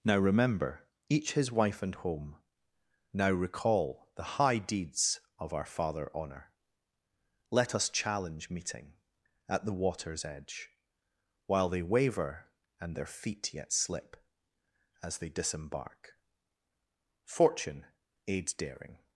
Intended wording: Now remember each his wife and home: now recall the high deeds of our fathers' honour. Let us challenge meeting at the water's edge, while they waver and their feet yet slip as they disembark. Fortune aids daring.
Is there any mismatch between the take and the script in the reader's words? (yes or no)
yes